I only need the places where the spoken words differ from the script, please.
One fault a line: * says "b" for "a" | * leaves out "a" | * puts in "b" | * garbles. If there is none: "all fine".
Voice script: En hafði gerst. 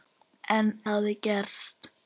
all fine